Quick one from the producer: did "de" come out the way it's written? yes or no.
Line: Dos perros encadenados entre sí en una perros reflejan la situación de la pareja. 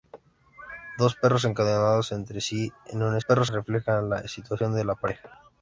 yes